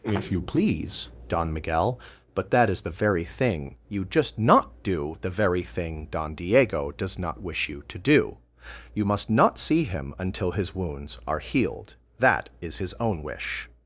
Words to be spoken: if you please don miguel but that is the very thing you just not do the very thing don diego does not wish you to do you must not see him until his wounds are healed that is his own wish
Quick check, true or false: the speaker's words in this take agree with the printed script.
true